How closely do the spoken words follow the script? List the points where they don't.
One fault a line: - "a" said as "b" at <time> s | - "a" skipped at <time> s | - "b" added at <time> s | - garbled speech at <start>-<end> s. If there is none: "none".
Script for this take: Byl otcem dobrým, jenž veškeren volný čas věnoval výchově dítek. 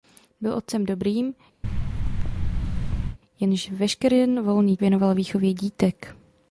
- "čas" skipped at 4.8 s